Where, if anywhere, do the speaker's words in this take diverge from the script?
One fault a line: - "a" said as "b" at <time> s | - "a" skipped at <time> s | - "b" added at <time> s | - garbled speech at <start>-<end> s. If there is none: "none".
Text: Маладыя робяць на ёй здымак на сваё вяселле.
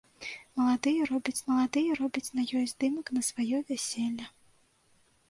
- "маладыя робяць" added at 1.5 s